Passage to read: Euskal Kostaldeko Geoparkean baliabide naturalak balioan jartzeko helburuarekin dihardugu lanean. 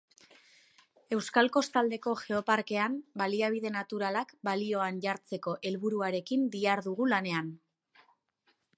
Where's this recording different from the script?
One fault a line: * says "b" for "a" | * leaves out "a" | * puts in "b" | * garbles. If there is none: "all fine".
all fine